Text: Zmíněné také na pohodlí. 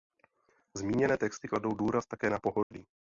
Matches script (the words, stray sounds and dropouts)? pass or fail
fail